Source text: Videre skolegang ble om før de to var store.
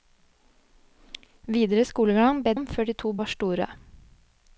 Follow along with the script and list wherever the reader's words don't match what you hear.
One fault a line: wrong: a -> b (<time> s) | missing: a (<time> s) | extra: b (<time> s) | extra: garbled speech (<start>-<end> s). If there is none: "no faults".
no faults